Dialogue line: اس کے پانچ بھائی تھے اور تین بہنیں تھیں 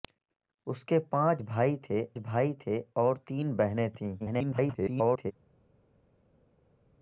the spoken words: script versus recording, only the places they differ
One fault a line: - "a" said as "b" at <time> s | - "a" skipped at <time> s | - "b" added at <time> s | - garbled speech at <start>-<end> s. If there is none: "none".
- "بھائی تھے" added at 2.2 s
- garbled speech at 4.2-5.3 s